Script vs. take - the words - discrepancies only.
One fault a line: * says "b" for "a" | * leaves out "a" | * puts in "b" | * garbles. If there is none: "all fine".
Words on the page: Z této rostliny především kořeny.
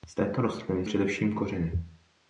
all fine